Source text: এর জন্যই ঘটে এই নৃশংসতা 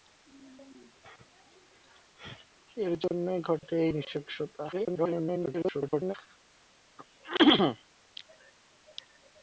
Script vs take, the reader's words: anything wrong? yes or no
yes